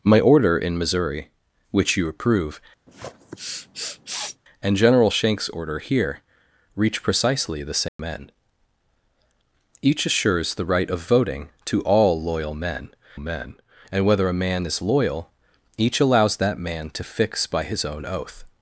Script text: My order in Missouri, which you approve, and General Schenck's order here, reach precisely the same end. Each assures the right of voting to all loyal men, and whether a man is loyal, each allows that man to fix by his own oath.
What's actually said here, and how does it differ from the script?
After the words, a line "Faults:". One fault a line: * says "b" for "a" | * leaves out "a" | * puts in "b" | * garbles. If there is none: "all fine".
My order in Missouri, which you approve, and General Schenck's order here, reach precisely the same end. Each assures the right of voting to all loyal men men, and whether a man is loyal, each allows that man to fix by his own oath.
Faults:
* puts in "men"